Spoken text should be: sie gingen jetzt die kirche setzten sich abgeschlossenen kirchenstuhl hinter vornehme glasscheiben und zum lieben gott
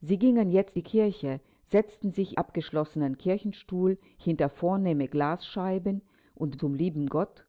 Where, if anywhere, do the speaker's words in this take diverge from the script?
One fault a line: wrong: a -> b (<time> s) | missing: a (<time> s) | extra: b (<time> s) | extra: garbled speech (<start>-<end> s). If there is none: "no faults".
no faults